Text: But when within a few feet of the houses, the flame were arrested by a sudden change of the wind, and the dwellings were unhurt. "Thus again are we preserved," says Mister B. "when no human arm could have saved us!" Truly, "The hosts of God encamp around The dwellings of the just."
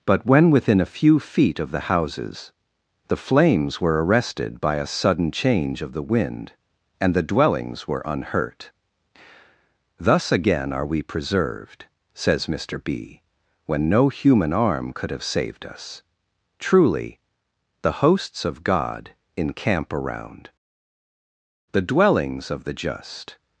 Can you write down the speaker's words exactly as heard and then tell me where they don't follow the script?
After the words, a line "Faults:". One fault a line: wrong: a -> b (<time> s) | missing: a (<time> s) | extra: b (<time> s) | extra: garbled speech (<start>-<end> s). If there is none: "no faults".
But when within a few feet of the houses, the flames were arrested by a sudden change of the wind, and the dwellings were unhurt. "Thus again are we preserved," says Mister B. "when no human arm could have saved us!" Truly, "The hosts of God encamp around The dwellings of the just."
Faults:
wrong: flame -> flames (3.2 s)